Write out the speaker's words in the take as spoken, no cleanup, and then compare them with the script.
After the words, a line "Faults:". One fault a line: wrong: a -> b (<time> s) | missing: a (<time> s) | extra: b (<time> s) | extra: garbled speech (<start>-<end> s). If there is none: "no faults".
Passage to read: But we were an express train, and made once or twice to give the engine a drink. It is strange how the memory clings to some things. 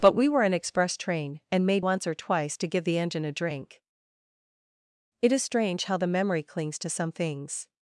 But we were an express train, and made once or twice to give the engine a drink. It is strange how the memory clings to some things.
Faults:
no faults